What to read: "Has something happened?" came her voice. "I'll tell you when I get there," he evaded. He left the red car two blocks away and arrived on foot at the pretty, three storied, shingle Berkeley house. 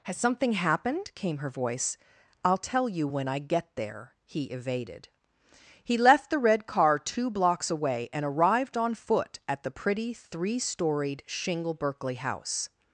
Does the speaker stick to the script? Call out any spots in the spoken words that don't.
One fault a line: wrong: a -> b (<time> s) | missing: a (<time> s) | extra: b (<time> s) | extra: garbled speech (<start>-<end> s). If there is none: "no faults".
no faults